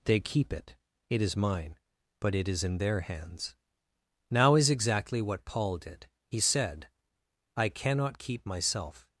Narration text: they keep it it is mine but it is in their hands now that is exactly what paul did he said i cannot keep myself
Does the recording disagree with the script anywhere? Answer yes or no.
yes